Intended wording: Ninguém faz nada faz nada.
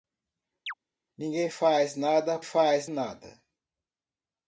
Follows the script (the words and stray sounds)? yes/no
no